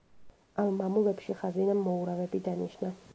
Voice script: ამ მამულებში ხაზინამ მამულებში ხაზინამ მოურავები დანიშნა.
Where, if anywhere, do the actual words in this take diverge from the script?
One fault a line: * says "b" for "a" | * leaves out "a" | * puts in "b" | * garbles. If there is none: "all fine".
* leaves out "მამულებში ხაზინამ"